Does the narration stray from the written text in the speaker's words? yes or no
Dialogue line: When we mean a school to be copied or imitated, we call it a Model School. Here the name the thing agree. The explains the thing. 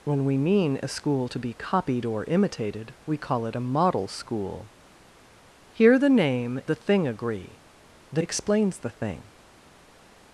no